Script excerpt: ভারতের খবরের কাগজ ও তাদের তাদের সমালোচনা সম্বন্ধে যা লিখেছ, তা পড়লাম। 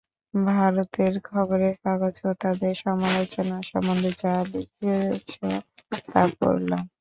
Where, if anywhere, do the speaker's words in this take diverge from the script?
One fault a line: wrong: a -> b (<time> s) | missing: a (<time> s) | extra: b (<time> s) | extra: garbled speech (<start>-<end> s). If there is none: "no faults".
missing: তাদের (2.7 s)